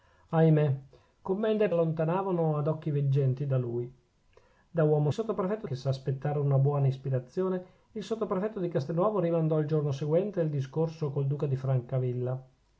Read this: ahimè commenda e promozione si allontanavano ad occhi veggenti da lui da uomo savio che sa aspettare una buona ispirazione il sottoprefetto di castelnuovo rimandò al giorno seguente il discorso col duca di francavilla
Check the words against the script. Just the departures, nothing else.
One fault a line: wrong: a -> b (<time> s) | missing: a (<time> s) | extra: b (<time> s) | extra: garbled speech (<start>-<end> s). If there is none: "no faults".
missing: promozione si (1.7 s)
wrong: savio -> sottoprefetto (5.1 s)